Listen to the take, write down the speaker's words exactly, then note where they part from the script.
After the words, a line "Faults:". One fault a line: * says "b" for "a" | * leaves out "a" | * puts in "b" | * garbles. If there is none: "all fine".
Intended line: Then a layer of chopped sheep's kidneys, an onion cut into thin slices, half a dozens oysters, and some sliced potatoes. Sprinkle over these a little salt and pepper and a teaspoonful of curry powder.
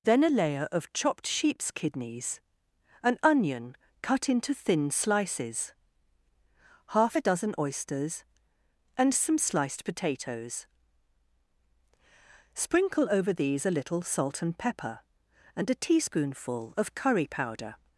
Then a layer of chopped sheep's kidneys, an onion cut into thin slices, half a dozen oysters, and some sliced potatoes. Sprinkle over these a little salt and pepper and a teaspoonful of curry powder.
Faults:
* says "dozen" for "dozens"